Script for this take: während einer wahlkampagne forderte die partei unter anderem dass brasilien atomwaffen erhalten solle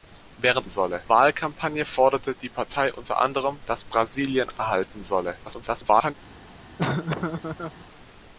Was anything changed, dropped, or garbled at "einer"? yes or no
yes